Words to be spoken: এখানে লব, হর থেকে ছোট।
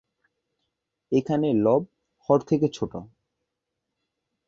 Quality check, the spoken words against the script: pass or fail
pass